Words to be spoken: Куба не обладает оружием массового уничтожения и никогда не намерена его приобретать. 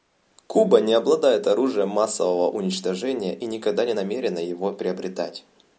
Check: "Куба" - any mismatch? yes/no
no